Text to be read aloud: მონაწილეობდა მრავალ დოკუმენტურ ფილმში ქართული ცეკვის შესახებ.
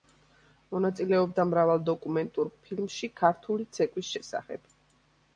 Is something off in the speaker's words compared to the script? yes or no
no